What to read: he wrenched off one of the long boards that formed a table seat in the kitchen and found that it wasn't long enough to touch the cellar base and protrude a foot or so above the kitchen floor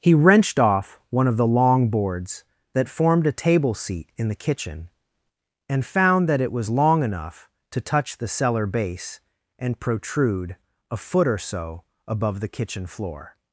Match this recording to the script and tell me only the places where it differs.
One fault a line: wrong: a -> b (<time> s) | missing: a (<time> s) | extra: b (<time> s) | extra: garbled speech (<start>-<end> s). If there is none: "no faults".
wrong: wasn't -> was (6.5 s)